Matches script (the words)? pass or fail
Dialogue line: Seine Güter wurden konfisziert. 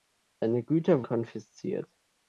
fail